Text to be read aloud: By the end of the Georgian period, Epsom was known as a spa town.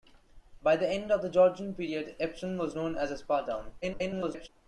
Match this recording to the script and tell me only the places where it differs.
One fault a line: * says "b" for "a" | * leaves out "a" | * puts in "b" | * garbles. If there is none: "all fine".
* garbles